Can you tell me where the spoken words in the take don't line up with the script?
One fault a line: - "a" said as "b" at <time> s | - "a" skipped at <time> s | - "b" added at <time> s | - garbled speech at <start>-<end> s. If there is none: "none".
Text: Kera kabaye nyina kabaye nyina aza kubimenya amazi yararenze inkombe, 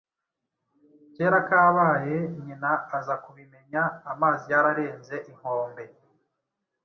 - "kabaye nyina" skipped at 2.7 s